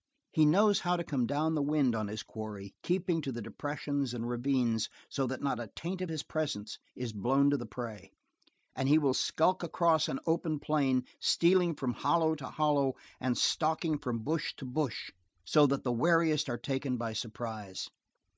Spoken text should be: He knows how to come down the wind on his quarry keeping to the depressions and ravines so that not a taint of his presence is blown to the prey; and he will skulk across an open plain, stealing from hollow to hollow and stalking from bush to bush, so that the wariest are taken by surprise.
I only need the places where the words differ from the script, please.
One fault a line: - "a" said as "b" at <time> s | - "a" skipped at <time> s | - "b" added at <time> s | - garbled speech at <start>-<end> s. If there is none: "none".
none